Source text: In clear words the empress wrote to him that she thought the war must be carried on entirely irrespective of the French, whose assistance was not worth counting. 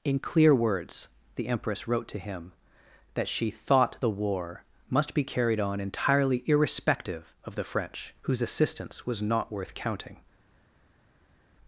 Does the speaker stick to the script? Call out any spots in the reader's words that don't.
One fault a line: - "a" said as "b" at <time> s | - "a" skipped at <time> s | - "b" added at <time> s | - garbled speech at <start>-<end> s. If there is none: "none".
none